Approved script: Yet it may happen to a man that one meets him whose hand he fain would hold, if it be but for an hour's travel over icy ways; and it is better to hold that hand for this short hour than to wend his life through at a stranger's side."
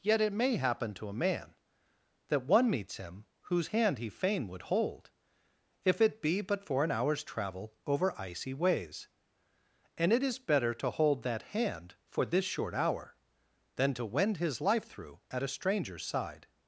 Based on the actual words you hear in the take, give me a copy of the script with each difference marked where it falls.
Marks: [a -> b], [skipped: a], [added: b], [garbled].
Yet it may happen to a man that one meets him whose hand he fain would hold, if it be but for an hour's travel over icy ways; and it is better to hold that hand for this short hour than to wend his life through at a stranger's side."